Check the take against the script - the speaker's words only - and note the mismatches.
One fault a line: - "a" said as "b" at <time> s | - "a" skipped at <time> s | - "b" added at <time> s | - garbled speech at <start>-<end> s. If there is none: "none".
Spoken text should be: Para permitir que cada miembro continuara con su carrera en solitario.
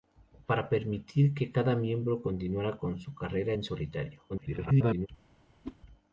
- garbled speech at 4.3-5.1 s